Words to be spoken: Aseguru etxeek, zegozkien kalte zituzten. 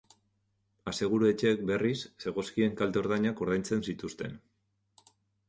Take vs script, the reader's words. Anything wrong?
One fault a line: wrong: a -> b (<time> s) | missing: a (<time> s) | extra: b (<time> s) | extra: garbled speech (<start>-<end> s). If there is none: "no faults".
extra: berriz (1.7 s)
extra: ordainak ordaintzen (3.0 s)